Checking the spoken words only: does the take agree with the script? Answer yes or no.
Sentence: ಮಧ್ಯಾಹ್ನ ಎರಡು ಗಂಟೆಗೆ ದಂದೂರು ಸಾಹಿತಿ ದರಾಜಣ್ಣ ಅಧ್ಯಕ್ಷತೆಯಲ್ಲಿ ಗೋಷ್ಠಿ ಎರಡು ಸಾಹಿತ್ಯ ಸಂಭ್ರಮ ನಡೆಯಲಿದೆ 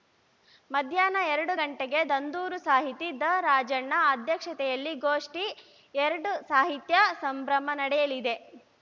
yes